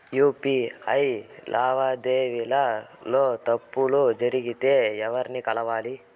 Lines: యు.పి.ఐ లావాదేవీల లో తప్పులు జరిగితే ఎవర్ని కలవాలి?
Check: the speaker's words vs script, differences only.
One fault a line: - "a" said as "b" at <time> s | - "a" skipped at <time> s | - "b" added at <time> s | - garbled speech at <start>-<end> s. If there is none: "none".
none